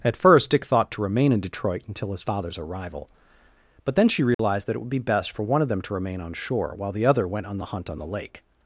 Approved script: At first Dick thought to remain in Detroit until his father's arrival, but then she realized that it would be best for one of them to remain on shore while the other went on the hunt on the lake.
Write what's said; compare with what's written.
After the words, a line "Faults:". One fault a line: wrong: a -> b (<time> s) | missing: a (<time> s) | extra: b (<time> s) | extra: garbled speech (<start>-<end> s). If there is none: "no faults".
At first Dick thought to remain in Detroit until his father's arrival, but then she realized that it would be best for one of them to remain on shore while the other went on the hunt on the lake.
Faults:
no faults